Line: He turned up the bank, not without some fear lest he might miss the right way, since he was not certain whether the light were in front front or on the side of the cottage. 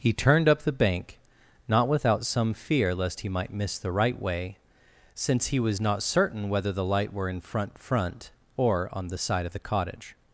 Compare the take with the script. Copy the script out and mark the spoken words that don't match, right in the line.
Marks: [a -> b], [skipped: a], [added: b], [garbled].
He turned up the bank, not without some fear lest he might miss the right way, since he was not certain whether the light were in front front or on the side of the cottage.